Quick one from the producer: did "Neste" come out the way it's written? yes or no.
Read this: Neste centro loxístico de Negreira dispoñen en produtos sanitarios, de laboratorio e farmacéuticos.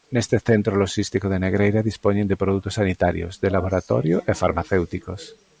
yes